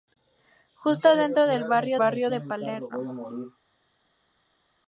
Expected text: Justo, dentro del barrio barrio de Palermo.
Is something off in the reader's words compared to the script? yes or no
no